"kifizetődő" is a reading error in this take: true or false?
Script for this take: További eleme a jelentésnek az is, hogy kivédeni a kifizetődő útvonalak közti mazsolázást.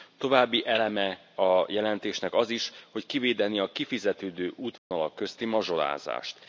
false